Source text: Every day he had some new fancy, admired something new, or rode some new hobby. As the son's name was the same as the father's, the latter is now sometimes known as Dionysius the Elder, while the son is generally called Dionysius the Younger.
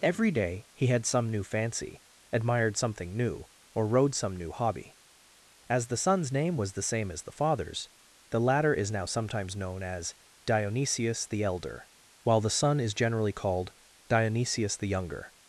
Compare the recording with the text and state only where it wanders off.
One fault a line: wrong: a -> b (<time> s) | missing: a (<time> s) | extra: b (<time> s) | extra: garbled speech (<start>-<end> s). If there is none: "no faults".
no faults